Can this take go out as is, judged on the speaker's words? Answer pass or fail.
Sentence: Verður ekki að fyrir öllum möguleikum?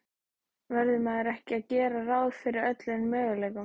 fail